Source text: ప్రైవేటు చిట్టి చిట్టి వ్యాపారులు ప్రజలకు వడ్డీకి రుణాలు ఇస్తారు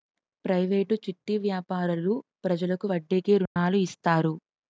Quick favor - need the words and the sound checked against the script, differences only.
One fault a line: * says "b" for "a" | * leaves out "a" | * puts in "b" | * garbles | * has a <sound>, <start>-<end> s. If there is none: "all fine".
* leaves out "చిట్టి"
* has a dropout, 3.5-3.6 s